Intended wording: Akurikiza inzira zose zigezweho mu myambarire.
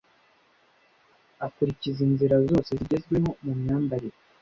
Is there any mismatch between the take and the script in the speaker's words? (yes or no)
no